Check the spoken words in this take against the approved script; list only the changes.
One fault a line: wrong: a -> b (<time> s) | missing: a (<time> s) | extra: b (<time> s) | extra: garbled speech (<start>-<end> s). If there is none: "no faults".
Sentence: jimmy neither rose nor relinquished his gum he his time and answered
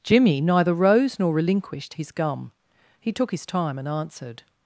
extra: took (3.1 s)